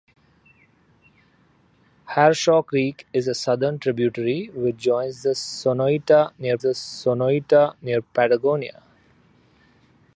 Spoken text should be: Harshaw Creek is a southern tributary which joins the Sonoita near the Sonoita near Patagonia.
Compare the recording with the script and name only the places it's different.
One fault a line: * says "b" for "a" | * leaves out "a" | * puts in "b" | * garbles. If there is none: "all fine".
all fine